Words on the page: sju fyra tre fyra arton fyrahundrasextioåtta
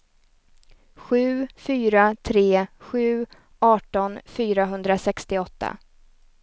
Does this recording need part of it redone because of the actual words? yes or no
yes